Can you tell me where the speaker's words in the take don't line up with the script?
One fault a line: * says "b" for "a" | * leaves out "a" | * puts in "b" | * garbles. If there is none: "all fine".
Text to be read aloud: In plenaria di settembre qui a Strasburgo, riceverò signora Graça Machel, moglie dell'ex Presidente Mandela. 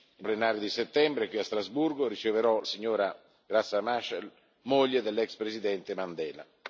all fine